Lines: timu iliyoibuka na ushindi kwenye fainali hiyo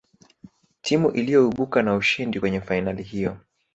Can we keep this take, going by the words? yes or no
yes